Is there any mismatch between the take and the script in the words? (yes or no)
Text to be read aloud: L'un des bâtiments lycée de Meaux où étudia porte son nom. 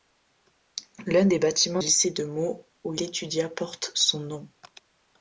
no